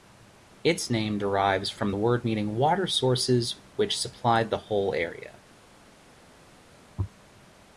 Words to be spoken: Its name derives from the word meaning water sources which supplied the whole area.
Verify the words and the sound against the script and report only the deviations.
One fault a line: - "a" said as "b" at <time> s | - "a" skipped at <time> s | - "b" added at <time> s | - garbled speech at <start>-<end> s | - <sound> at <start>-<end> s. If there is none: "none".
none